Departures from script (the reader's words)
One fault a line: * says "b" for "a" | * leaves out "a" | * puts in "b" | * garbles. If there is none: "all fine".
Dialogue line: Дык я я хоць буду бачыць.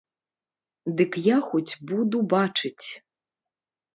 * leaves out "я"